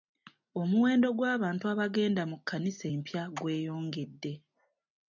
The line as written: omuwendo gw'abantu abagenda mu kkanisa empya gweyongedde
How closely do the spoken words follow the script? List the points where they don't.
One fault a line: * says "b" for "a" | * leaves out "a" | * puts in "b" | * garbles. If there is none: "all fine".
all fine